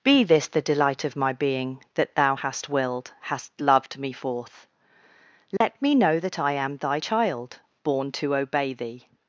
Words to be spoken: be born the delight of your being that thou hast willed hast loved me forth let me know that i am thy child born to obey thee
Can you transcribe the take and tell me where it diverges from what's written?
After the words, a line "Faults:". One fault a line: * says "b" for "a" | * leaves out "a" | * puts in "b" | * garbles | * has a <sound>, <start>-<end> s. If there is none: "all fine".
be this the delight of my being that thou hast willed hast loved me forth let me know that i am thy child born to obey thee
Faults:
* says "this" for "born"
* says "my" for "your"
* has a dropout, 5.6-5.6 s